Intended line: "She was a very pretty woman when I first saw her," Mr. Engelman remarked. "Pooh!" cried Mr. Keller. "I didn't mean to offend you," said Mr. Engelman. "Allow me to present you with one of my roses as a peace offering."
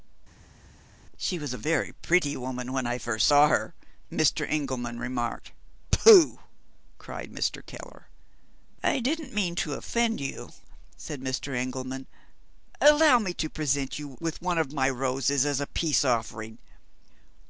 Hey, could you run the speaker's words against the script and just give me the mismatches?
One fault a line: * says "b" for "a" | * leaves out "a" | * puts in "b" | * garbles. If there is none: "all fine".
all fine